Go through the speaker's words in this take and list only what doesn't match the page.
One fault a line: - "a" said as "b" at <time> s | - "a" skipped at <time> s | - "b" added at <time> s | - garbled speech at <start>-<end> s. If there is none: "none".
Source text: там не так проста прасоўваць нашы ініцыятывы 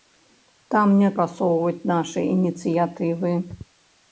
- "так проста" skipped at 1.1 s